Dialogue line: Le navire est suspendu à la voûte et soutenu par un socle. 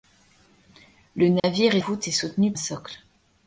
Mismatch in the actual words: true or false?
true